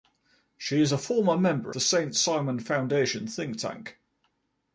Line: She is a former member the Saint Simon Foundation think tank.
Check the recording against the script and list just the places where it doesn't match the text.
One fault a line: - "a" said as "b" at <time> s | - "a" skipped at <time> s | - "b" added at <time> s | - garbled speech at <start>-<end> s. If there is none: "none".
none